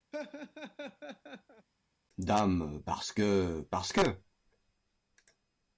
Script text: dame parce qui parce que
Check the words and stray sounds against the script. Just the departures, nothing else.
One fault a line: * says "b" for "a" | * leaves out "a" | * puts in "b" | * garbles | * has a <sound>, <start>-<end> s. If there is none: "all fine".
* has a laugh, 0.1-1.7 s
* says "que" for "qui"